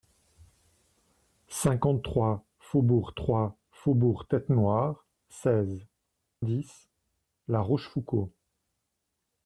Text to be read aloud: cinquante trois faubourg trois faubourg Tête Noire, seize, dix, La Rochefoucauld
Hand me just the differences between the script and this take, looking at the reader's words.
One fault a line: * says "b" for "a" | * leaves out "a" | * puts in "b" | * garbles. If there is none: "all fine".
all fine